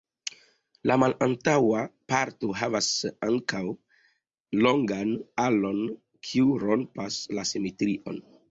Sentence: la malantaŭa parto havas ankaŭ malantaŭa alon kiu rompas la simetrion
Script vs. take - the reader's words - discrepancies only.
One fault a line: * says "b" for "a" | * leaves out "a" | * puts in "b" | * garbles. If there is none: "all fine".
* says "longan" for "malantaŭa"